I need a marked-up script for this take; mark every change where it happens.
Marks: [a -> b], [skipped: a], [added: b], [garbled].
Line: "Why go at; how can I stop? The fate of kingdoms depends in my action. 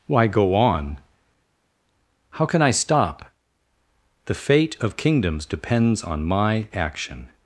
"Why go [at; -> on] how can I stop? The fate of kingdoms depends [in -> on] my action.